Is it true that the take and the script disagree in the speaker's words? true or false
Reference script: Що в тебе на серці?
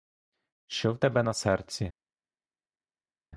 false